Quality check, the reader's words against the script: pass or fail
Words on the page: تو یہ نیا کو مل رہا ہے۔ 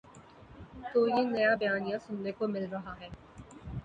fail